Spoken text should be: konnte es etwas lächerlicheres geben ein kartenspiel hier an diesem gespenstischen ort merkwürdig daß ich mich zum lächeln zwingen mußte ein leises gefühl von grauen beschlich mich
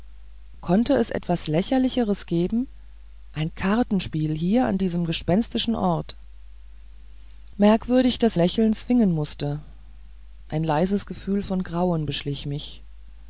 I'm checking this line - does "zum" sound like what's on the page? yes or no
no